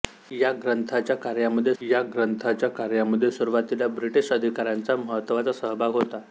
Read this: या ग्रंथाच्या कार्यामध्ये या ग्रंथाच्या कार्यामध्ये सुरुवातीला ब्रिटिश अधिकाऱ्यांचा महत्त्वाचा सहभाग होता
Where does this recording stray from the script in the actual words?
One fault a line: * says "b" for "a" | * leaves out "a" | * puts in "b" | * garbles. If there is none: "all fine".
all fine